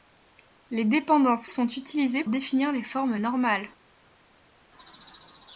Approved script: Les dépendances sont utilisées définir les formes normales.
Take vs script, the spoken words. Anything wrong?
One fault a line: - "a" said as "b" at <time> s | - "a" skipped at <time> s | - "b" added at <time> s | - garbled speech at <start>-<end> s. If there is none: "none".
none